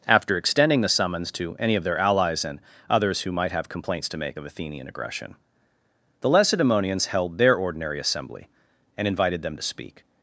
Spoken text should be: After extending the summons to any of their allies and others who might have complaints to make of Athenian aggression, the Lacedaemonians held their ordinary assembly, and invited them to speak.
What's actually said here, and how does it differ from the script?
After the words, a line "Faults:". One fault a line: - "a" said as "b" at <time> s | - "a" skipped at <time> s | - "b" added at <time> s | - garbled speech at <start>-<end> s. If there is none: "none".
After extending the summons to any of their allies and others who might have complaints to make of Athenian aggression, the Lacedaemonians held their ordinary assembly, and invited them to speak.
Faults:
none